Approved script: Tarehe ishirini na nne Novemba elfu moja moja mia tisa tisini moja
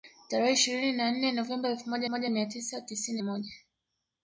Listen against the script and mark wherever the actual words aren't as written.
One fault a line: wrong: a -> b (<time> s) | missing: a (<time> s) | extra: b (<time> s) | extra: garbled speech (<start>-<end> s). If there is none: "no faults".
no faults